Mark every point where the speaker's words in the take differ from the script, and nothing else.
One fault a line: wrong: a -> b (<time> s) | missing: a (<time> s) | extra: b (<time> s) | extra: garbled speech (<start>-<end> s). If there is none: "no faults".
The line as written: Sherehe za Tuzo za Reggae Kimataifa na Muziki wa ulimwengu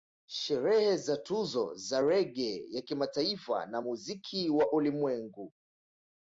extra: ya (2.7 s)